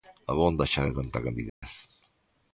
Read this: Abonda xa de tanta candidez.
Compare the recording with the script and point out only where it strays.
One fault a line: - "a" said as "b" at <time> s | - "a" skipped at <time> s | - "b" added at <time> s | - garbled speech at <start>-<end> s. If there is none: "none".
none